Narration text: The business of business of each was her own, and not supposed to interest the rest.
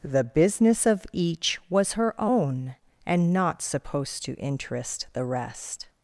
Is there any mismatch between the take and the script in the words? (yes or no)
yes